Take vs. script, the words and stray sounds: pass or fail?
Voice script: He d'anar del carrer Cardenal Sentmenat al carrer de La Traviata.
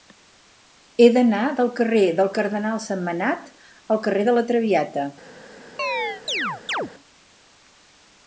fail